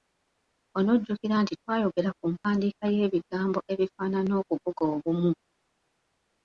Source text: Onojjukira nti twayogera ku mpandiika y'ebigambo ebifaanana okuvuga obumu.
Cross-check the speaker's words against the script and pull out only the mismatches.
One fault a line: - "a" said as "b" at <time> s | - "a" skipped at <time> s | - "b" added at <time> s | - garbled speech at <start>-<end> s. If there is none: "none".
none